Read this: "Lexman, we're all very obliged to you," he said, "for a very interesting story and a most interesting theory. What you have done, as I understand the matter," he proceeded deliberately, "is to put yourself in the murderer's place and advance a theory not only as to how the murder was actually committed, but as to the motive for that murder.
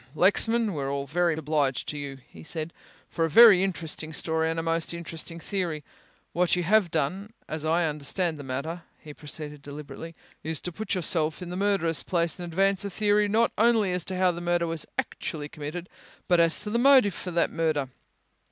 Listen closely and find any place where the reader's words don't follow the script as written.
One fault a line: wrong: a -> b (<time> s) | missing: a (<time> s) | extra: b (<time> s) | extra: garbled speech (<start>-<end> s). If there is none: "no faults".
no faults